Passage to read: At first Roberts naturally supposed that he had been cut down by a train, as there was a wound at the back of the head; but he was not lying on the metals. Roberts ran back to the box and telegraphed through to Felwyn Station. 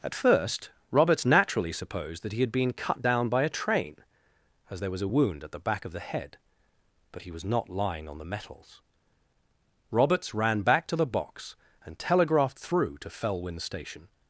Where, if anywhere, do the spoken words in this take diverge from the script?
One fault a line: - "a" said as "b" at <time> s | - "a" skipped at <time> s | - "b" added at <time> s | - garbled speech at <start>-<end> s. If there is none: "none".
none